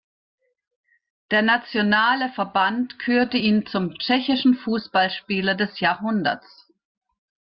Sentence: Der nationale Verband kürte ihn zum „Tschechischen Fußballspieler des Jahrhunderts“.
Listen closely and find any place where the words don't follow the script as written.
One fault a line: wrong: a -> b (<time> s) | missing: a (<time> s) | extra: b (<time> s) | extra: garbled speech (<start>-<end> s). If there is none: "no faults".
no faults